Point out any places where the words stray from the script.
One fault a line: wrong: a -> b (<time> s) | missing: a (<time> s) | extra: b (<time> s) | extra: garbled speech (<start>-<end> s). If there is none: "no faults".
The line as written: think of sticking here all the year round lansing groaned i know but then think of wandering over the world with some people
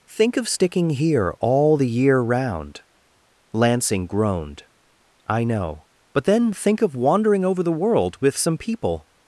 no faults